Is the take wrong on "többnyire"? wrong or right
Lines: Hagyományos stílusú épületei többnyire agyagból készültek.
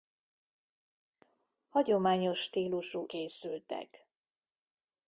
wrong